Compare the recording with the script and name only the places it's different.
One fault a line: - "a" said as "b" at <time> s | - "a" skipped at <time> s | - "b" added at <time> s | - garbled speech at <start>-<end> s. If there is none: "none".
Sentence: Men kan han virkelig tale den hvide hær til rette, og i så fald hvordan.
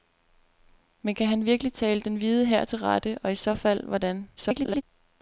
- garbled speech at 4.4-4.8 s